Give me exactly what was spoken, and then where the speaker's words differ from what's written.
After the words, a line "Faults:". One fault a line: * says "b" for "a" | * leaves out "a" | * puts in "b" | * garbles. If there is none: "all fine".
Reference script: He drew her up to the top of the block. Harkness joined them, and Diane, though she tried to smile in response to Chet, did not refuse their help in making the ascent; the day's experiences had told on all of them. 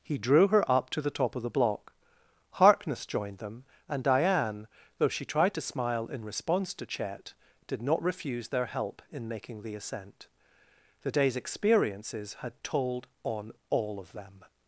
He drew her up to the top of the block. Harkness joined them, and Diane, though she tried to smile in response to Chet, did not refuse their help in making the ascent; the day's experiences had told on all of them.
Faults:
all fine